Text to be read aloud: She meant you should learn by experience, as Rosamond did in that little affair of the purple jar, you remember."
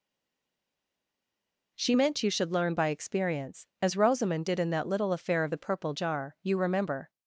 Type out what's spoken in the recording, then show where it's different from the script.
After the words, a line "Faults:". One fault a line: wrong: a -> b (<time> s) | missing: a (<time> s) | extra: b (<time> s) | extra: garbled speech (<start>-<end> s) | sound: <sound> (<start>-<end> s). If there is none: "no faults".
She meant you should learn by experience, as Rosamond did in that little affair of the purple jar, you remember."
Faults:
no faults